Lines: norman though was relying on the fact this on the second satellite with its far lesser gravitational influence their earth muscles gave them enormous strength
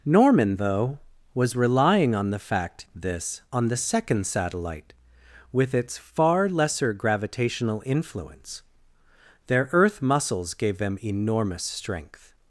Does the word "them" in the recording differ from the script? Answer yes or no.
no